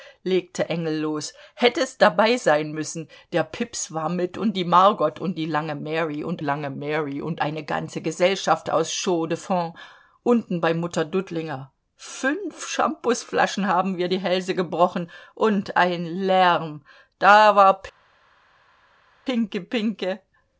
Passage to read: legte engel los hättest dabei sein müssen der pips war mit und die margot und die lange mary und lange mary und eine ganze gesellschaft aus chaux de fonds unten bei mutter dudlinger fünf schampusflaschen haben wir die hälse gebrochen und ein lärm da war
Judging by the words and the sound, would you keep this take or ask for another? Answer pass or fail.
pass